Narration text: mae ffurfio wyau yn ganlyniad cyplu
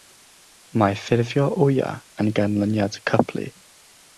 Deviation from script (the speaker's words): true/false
false